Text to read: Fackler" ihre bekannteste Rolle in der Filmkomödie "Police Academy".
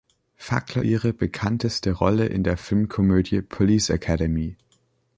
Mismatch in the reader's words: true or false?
false